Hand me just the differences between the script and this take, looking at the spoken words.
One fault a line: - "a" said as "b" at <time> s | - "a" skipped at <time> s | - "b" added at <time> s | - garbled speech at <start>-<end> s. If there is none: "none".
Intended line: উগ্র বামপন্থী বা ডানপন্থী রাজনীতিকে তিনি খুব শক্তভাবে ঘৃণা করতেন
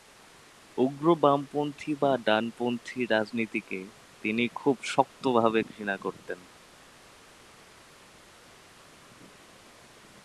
none